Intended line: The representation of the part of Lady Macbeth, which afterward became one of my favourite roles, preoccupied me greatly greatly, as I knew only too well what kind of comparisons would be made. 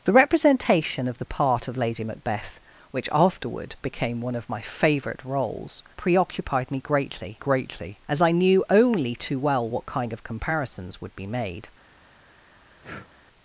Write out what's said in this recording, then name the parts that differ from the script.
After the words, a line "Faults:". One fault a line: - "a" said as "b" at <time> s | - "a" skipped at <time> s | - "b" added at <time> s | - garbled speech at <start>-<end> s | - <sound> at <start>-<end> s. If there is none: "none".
The representation of the part of Lady Macbeth, which afterward became one of my favourite roles, preoccupied me greatly greatly, as I knew only too well what kind of comparisons would be made.
Faults:
- breath at 12.8-13.1 s